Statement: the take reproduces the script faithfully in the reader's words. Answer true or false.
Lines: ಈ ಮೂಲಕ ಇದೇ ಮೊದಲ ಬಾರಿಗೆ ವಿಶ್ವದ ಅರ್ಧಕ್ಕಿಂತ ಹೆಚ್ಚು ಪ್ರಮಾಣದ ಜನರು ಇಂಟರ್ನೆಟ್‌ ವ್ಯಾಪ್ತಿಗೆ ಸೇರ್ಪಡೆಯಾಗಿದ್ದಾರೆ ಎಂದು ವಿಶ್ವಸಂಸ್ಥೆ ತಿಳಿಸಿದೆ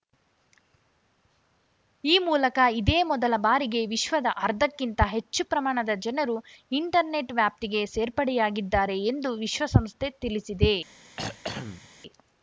true